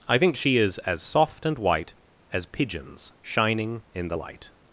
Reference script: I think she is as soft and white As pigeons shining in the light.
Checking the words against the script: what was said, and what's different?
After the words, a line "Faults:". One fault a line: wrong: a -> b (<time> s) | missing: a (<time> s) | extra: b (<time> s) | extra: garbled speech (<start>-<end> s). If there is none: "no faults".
I think she is as soft and white As pigeons shining in the light.
Faults:
no faults